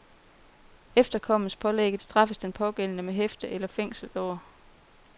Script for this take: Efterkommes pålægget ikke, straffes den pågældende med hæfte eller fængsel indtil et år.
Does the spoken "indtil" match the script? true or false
false